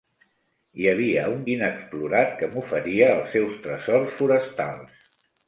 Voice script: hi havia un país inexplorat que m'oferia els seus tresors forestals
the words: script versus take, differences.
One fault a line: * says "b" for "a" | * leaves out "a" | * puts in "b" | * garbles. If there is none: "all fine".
* leaves out "país"